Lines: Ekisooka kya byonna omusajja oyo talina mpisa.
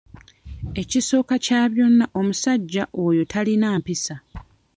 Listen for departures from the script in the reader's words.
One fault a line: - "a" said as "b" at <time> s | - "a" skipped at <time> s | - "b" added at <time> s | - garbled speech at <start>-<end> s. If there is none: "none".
none